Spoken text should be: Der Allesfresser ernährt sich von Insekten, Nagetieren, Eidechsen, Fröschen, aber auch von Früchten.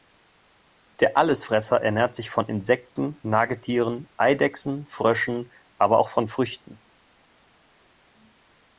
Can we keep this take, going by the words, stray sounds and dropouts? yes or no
yes